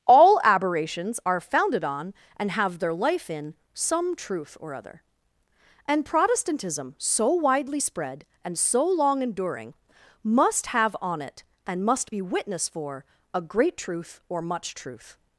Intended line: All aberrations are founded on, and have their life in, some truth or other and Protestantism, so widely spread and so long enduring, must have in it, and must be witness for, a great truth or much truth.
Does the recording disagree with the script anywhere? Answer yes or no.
yes